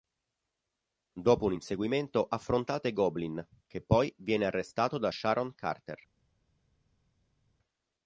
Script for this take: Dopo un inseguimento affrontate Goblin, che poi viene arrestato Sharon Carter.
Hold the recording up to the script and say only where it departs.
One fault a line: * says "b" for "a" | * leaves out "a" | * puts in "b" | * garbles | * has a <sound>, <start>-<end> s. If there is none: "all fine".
* puts in "da"